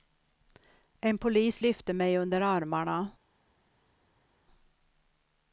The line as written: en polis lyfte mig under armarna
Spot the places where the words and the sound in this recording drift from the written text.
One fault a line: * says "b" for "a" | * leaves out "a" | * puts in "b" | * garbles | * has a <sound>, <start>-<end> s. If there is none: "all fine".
all fine